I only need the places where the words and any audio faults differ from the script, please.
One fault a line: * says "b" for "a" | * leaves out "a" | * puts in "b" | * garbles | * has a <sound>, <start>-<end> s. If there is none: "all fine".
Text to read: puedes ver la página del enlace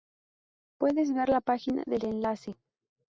all fine